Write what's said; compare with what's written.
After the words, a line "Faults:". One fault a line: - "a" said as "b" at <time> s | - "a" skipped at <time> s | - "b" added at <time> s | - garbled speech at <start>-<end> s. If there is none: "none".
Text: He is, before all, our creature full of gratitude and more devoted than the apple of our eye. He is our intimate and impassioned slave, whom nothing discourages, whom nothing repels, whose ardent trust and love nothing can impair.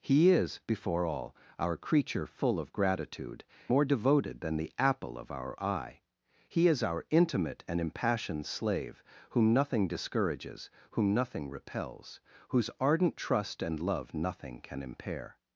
He is, before all, our creature full of gratitude more devoted than the apple of our eye. He is our intimate and impassioned slave, whom nothing discourages, whom nothing repels, whose ardent trust and love nothing can impair.
Faults:
- "and" skipped at 3.4 s